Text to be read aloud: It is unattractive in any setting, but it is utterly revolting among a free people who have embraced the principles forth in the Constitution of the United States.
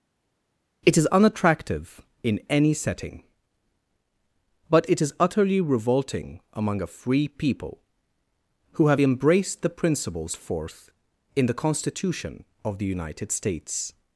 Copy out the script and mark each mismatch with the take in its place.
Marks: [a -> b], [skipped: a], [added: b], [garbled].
It is unattractive in any setting, but it is utterly revolting among a free people who have embraced the principles forth in the Constitution of the United States.